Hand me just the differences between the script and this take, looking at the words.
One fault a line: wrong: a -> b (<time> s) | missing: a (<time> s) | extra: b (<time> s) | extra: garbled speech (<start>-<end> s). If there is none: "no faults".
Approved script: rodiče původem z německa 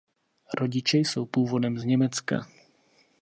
extra: jsou (1.0 s)